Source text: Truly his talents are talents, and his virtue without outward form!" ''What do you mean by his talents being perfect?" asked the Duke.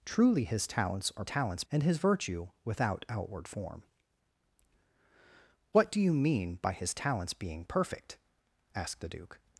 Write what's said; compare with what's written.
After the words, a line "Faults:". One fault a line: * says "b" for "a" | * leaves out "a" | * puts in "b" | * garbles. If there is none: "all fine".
Truly his talents are talents, and his virtue without outward form!" ''What do you mean by his talents being perfect?" asked the Duke.
Faults:
all fine